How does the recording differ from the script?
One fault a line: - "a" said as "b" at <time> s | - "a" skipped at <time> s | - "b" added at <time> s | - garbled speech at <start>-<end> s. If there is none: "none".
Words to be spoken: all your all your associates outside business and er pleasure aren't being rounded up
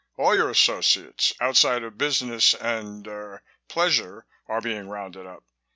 - "all your" skipped at 0.5 s
- "of" added at 1.8 s
- "aren't" said as "are" at 4.5 s